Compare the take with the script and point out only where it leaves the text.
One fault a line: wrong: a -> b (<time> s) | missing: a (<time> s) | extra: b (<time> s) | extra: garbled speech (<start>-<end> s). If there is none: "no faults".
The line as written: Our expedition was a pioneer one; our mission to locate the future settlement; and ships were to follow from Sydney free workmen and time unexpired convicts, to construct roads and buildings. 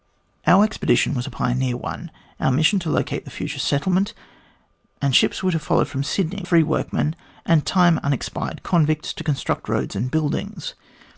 no faults